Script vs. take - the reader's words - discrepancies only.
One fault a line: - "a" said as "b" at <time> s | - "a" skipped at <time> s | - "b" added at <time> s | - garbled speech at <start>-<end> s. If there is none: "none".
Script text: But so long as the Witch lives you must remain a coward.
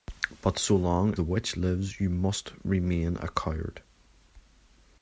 - "as" skipped at 1.1 s